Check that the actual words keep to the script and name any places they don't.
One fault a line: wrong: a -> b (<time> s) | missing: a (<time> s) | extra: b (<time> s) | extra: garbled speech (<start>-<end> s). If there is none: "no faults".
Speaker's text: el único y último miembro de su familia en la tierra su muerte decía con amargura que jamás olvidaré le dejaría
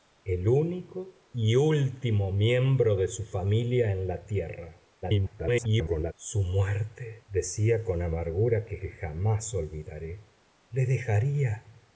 extra: garbled speech (5.0-6.1 s)
extra: que (8.8 s)